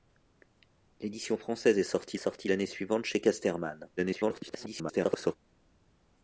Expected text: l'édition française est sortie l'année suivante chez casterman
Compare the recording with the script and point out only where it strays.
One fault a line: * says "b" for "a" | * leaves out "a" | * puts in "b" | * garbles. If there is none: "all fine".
* puts in "sortie"
* garbles